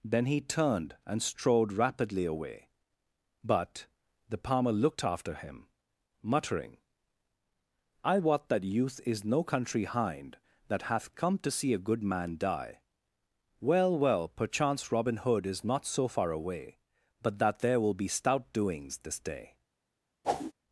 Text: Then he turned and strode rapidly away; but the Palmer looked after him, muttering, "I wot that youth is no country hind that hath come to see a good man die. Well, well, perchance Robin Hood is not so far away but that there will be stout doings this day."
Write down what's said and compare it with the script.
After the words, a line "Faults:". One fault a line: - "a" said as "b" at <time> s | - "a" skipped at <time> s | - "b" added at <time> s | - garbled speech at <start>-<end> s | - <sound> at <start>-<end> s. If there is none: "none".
Then he turned and strode rapidly away; but the Palmer looked after him, muttering, "I wot that youth is no country hind that hath come to see a good man die. Well, well, perchance Robin Hood is not so far away but that there will be stout doings this day."
Faults:
- whoosh at 20.2-20.5 s